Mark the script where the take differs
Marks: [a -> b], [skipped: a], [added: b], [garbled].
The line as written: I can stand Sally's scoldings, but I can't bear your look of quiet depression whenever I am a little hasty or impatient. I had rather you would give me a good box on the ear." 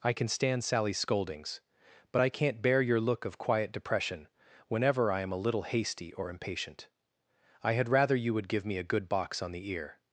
I can stand Sally's scoldings, but I can't bear your look of quiet depression whenever I am a little hasty or impatient. I had rather you would give me a good box on the ear."